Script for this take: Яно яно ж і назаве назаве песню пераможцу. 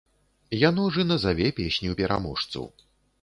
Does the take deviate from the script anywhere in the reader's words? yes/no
yes